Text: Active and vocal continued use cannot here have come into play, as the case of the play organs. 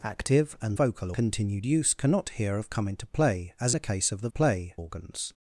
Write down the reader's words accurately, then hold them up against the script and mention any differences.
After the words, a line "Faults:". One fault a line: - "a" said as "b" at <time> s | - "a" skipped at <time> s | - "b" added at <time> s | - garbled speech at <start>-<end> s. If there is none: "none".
Active and vocal continued use cannot here have come into play, as the case of the play organs.
Faults:
none